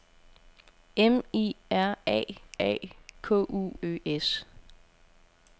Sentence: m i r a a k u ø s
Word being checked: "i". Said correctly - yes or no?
yes